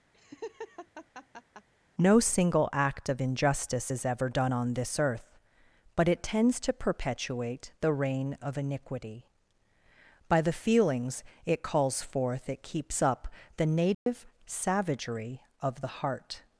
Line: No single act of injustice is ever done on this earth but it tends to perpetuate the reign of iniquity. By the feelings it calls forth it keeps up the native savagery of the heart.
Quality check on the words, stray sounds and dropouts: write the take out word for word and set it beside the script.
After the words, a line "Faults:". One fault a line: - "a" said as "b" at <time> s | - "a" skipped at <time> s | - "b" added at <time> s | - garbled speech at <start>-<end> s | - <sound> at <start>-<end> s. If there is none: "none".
No single act of injustice is ever done on this earth but it tends to perpetuate the reign of iniquity. By the feelings it calls forth it keeps up the native savagery of the heart.
Faults:
- laugh at 0.1-1.7 s
- dropout at 13.9-14.1 s